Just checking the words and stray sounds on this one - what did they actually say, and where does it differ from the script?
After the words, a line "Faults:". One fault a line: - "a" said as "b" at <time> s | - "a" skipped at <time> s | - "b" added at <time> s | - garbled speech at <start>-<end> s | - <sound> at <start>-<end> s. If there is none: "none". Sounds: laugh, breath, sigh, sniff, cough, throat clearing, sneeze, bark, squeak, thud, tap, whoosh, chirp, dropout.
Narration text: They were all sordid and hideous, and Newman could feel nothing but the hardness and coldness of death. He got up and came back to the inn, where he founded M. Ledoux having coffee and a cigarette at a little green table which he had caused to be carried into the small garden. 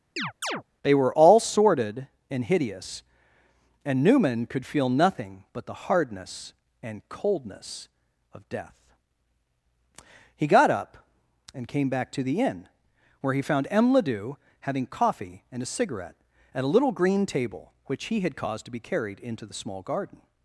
They were all sordid and hideous, and Newman could feel nothing but the hardness and coldness of death. He got up and came back to the inn, where he found M. Ledoux having coffee and a cigarette at a little green table which he had caused to be carried into the small garden.
Faults:
- chirp at 0.2-0.6 s
- "founded" said as "found" at 13.4 s